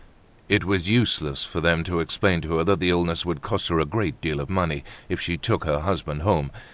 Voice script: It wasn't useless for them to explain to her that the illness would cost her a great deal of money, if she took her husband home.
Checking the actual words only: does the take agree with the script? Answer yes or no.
no